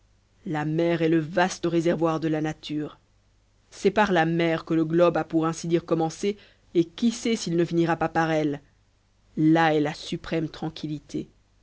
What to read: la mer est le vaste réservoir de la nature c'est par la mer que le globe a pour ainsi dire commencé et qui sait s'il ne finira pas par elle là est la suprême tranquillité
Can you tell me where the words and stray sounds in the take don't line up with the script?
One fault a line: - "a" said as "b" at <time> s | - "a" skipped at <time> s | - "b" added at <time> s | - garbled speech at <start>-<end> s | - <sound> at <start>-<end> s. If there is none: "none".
none